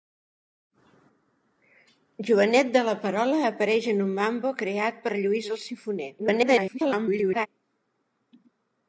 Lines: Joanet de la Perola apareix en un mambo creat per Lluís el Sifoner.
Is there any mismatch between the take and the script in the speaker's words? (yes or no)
yes